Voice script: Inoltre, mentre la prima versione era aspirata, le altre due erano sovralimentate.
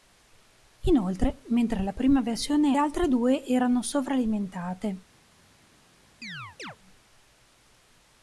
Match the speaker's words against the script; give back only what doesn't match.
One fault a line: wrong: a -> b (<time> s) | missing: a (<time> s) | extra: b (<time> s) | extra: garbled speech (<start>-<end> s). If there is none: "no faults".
missing: era aspirata le (2.8 s)